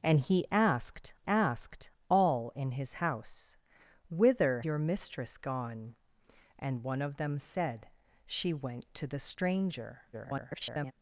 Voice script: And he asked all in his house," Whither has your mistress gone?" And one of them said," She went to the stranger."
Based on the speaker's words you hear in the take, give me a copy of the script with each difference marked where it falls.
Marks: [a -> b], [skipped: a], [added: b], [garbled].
And he asked [added: asked] all in his house," Whither [skipped: has] your mistress gone?" And one of them said," She went to the stranger." [garbled]